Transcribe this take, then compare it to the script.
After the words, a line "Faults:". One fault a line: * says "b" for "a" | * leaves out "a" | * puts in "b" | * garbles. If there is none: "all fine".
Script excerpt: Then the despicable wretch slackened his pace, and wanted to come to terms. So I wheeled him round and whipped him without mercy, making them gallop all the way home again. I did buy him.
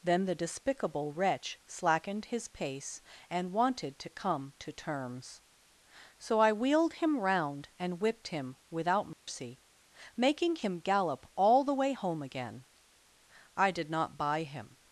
Then the despicable wretch slackened his pace, and wanted to come to terms. So I wheeled him round and whipped him without mercy, making him gallop all the way home again. I did not buy him.
Faults:
* says "him" for "them"
* puts in "not"